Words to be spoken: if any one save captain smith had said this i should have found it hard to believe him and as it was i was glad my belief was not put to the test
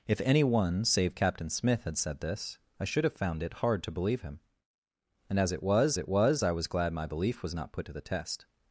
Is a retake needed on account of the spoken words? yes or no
yes